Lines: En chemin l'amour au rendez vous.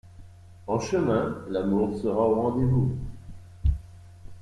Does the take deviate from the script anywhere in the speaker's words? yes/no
yes